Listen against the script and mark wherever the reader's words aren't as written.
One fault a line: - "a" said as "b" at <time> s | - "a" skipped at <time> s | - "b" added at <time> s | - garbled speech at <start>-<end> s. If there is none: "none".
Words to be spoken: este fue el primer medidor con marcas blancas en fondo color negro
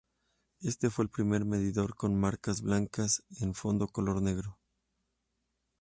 none